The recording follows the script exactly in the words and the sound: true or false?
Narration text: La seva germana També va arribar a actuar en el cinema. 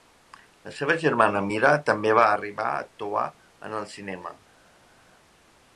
false